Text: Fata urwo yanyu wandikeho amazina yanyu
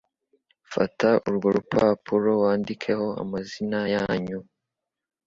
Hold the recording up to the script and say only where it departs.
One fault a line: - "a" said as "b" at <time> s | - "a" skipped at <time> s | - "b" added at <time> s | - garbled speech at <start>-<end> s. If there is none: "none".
- "yanyu" said as "rupapuro" at 1.6 s